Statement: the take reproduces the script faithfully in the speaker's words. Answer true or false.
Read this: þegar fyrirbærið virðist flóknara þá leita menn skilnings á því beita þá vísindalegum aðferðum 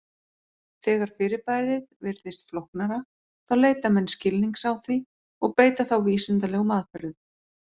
false